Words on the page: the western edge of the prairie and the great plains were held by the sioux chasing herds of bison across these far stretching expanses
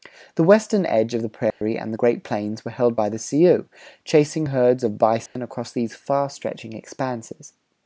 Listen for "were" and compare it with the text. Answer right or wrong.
right